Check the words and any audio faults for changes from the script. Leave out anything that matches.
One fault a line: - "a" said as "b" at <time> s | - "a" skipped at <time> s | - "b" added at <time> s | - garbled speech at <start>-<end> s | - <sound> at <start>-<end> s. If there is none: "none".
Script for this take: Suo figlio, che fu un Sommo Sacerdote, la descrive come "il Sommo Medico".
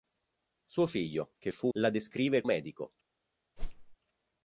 - "un Sommo Sacerdote" skipped at 1.7 s
- "come il Sommo" skipped at 2.4 s
- whoosh at 3.6-4.0 s